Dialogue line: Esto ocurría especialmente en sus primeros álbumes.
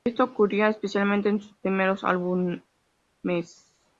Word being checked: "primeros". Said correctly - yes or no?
yes